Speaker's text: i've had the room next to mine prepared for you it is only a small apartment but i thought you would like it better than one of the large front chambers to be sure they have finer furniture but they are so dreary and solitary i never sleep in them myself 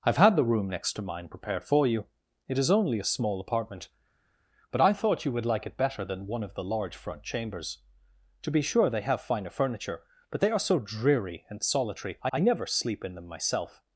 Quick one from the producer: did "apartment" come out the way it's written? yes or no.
yes